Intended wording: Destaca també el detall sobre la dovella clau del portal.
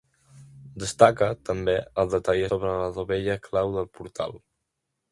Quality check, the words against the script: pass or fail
pass